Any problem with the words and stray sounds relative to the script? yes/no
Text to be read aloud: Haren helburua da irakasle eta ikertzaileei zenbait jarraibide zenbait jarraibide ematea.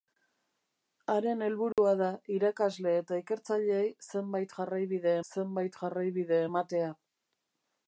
yes